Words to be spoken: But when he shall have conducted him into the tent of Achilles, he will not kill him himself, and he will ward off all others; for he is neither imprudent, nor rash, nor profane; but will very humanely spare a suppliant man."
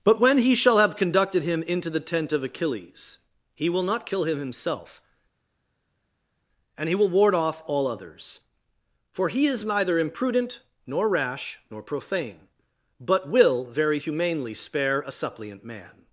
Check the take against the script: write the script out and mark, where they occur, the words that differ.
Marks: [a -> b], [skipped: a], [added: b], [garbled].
But when he shall have conducted him into the tent of Achilles, he will not kill him himself, and he will ward off all others; for he is neither imprudent, nor rash, nor profane; but will very humanely spare a suppliant man."